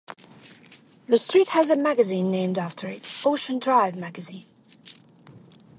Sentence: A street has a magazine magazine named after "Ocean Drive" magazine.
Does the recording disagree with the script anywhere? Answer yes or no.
yes